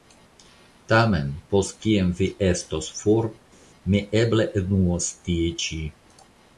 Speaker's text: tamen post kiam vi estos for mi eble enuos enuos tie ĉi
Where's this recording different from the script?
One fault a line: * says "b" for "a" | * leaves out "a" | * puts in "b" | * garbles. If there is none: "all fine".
* leaves out "enuos"